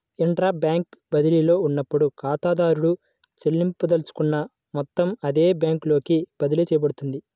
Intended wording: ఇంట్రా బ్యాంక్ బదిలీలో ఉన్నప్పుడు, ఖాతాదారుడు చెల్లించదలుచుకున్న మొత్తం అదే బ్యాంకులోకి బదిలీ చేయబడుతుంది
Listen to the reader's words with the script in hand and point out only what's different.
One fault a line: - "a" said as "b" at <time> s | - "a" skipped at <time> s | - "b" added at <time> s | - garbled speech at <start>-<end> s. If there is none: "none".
none